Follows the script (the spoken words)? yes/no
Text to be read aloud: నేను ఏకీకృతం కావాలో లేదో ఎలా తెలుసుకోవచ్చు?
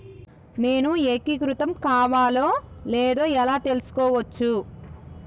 yes